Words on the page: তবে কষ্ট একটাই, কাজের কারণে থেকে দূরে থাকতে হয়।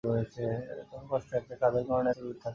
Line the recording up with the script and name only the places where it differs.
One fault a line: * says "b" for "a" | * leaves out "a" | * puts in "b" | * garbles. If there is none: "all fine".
all fine